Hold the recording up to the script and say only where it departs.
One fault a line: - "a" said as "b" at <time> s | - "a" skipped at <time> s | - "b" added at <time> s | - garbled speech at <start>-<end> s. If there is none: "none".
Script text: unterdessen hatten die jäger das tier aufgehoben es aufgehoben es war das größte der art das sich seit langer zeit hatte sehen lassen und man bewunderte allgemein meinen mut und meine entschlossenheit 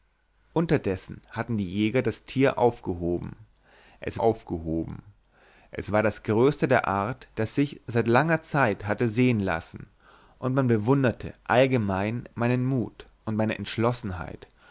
none